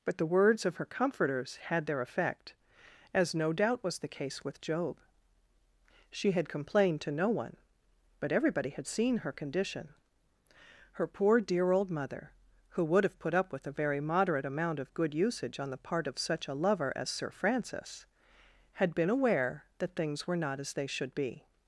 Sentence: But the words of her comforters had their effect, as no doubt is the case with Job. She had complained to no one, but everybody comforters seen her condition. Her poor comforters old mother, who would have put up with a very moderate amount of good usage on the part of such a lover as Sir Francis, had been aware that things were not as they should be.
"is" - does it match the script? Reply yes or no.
no